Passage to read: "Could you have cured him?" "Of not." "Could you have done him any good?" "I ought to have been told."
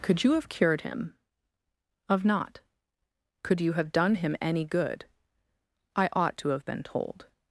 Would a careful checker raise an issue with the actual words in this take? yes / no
no